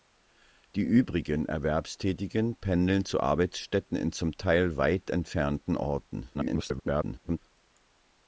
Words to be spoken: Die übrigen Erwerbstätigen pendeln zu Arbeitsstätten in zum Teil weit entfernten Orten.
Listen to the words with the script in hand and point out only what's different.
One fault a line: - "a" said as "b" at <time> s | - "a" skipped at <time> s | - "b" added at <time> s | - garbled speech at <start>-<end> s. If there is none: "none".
- garbled speech at 6.3-7.4 s